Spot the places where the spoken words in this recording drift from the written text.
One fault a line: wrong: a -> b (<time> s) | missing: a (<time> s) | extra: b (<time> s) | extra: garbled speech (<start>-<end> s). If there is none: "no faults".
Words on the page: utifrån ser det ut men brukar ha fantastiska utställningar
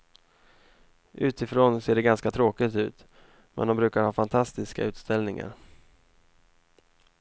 extra: ganska tråkigt (2.0 s)
extra: de (3.7 s)